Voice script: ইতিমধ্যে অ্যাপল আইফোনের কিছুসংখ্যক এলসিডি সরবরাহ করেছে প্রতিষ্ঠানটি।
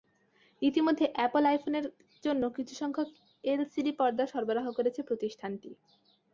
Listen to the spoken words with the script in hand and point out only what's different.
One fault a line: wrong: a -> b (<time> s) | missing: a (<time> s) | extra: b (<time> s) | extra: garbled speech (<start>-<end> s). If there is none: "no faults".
extra: জন্য (2.2 s)
extra: পর্দা (4.0 s)